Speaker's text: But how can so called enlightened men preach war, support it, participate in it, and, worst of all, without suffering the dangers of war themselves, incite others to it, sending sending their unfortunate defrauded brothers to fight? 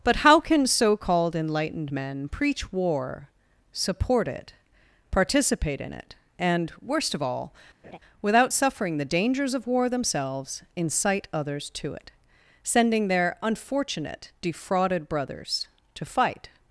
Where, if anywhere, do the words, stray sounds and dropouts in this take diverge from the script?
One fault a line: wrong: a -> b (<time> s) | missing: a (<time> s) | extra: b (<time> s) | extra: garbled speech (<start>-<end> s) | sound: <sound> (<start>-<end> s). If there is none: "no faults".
sound: laugh (7.8-8.0 s)
missing: sending (13.1 s)